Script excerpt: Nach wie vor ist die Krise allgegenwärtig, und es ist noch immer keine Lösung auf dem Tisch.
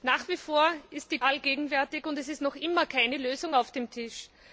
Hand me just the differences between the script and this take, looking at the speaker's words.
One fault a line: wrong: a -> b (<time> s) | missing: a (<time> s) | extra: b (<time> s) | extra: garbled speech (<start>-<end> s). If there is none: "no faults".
missing: Krise (1.2 s)